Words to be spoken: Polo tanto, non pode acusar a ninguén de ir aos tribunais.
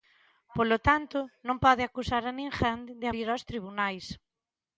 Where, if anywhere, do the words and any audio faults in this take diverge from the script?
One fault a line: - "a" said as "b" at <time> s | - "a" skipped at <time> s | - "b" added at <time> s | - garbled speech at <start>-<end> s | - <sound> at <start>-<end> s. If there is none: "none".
none